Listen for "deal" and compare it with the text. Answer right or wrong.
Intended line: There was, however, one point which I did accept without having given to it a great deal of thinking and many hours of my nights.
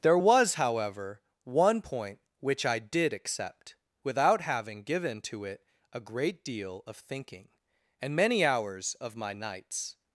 right